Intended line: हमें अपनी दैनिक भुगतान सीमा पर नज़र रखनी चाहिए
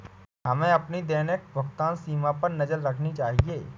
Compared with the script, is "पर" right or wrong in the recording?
right